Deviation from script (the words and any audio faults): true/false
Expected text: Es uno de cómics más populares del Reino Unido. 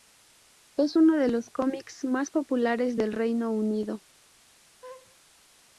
true